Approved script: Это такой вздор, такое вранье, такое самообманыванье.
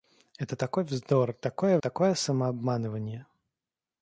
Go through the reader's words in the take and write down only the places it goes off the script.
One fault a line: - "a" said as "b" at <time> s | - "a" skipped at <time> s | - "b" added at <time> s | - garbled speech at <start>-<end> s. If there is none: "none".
- "вранье" skipped at 1.8 s